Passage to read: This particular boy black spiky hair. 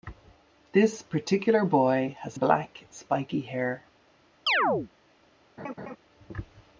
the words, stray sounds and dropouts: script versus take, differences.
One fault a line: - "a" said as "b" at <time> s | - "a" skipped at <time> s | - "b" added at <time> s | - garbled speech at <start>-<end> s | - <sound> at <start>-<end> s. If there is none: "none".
- "has" added at 2.2 s
- chirp at 4.5-4.9 s
- laugh at 5.6-6.0 s